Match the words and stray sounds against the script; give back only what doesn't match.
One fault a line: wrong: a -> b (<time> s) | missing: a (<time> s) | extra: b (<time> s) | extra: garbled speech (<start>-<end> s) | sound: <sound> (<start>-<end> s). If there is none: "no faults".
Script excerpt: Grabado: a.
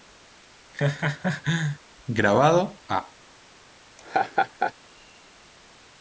sound: laugh (0.7-1.8 s)
sound: laugh (4.0-4.7 s)